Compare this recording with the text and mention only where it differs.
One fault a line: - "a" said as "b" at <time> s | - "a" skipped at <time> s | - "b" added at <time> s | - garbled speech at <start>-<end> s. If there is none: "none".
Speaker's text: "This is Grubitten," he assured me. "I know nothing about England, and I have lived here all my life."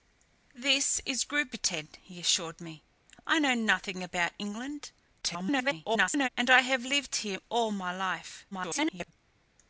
- garbled speech at 5.2-6.3 s
- garbled speech at 8.5-9.1 s